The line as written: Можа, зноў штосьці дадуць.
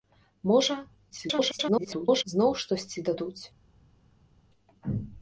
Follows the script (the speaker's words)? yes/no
no